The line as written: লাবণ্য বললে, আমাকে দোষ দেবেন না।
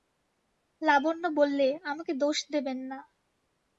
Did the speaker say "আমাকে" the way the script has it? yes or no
yes